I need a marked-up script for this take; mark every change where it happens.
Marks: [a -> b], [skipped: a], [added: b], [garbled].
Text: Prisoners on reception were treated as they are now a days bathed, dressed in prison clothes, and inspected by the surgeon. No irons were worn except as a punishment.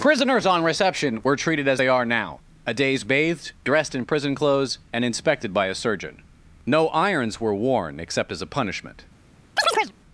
Prisoners on reception were treated as they are now a days bathed, dressed in prison clothes, and inspected by [the -> a] surgeon. No irons were worn except as a punishment.